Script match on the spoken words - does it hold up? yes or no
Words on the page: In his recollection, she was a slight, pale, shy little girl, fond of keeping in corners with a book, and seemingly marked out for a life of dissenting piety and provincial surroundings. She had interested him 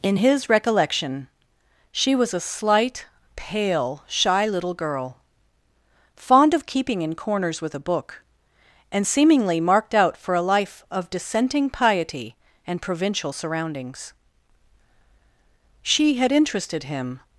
yes